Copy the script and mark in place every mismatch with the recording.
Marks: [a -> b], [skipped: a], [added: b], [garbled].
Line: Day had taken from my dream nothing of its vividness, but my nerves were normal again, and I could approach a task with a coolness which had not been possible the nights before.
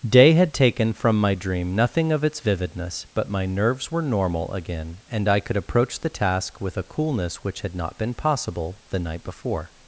Day had taken from my dream nothing of its vividness, but my nerves were normal again, and I could approach [a -> the] task with a coolness which had not been possible the [nights -> night] before.